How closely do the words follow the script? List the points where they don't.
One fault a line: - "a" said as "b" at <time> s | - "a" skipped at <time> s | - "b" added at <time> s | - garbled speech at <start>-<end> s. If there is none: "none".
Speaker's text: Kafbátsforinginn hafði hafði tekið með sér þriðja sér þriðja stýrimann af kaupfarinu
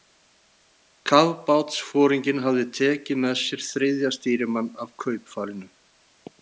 - "hafði" skipped at 2.6 s
- "sér þriðja" skipped at 4.1 s